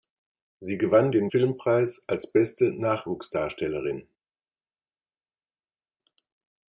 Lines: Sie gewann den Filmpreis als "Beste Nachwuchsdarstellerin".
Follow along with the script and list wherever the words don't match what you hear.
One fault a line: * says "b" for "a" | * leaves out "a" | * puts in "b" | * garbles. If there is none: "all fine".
all fine